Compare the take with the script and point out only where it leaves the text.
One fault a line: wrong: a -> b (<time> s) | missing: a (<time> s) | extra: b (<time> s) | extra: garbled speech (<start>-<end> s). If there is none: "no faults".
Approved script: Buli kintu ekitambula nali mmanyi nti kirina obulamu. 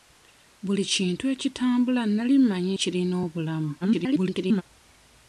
missing: nti (2.7 s)
extra: garbled speech (3.8-4.6 s)